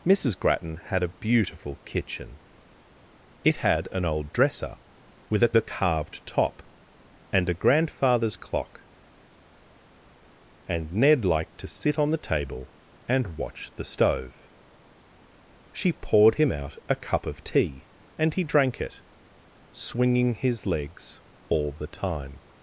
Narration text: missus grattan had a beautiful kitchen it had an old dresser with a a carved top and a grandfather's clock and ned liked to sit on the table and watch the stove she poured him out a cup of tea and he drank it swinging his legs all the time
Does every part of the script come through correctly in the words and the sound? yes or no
yes